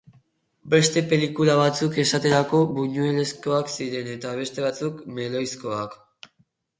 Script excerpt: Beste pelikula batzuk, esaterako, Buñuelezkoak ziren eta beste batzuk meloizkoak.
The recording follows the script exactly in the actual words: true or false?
true